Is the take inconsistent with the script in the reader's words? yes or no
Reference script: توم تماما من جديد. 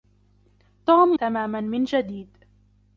no